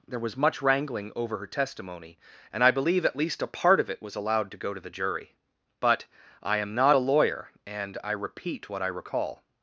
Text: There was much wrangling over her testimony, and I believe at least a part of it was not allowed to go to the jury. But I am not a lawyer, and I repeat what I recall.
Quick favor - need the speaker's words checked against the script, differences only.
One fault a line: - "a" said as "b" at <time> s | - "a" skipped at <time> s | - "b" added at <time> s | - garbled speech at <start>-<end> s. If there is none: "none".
- "not" skipped at 4.2 s